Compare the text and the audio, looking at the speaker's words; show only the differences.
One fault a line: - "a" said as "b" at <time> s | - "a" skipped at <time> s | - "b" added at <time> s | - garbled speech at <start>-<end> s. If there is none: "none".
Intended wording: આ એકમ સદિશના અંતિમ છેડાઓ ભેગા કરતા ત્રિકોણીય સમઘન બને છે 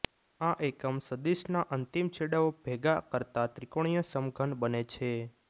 none